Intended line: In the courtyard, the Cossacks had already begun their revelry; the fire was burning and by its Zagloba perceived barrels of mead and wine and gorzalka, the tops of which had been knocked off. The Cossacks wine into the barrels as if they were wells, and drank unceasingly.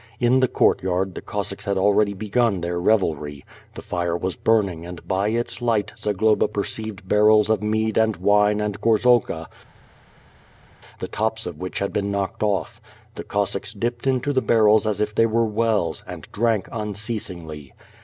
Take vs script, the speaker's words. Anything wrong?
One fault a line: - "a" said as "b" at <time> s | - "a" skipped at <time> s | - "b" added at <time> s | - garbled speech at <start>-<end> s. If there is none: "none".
- "light" added at 5.6 s
- "wine" said as "dipped" at 13.7 s